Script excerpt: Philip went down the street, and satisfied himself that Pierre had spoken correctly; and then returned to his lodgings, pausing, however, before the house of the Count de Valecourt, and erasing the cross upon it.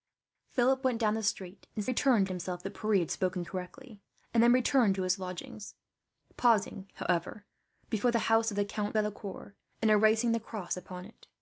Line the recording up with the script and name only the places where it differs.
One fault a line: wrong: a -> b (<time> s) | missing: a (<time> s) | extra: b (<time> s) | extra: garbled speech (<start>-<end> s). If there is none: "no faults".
wrong: satisfied -> returned (1.8 s)
missing: de (9.0 s)